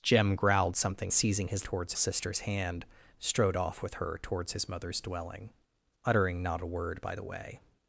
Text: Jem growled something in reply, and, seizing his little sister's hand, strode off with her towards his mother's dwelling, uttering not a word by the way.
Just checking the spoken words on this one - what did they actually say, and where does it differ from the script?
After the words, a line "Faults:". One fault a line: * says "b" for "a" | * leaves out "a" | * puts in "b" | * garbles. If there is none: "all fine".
Jem growled something seizing his towards sister's hand, strode off with her towards his mother's dwelling, uttering not a word by the way.
Faults:
* leaves out "in reply and"
* says "towards" for "little"